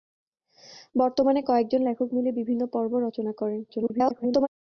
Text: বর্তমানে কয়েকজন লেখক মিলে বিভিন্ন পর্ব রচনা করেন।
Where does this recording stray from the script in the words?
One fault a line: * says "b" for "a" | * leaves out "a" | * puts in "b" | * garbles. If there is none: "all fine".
* garbles